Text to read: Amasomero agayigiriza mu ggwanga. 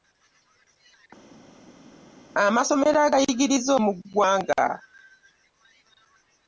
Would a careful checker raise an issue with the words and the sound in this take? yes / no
no